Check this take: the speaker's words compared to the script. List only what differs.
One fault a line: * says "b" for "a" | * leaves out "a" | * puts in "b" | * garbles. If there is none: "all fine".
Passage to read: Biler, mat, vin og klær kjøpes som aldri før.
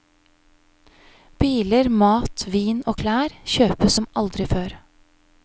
all fine